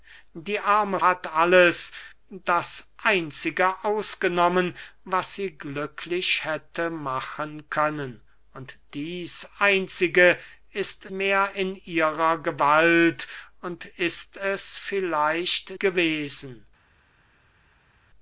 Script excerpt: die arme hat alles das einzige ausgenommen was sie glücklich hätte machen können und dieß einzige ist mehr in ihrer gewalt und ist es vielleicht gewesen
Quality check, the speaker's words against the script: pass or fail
pass